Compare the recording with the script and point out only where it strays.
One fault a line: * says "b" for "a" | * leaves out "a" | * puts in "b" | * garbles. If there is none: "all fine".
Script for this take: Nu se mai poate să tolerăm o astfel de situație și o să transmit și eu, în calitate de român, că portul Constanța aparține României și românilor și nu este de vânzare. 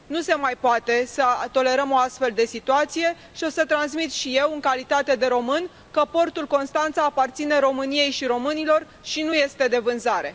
all fine